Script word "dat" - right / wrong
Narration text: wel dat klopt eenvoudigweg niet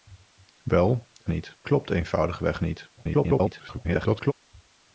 wrong